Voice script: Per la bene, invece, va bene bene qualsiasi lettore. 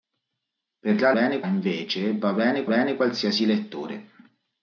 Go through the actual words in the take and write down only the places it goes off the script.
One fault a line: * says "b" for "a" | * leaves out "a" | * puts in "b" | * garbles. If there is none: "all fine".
all fine